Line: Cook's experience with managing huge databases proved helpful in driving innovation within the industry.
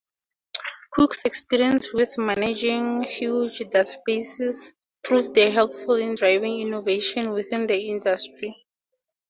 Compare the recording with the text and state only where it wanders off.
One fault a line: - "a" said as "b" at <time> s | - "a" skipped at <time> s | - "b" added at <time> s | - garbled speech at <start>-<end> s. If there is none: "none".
none